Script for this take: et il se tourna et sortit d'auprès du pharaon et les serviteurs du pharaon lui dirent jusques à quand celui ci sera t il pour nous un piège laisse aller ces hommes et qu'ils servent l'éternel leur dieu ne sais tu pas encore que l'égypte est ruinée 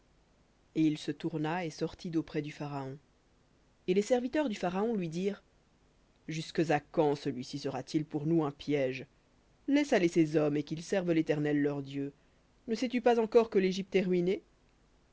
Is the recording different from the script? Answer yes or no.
no